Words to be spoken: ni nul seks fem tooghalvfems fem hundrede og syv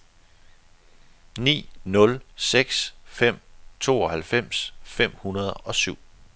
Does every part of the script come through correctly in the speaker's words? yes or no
yes